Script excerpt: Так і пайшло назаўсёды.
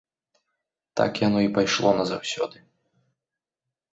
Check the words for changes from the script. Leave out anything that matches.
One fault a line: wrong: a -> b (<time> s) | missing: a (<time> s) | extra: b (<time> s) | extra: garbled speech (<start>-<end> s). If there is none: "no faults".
extra: яно (1.3 s)